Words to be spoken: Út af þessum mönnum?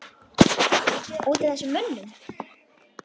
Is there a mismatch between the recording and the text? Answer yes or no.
no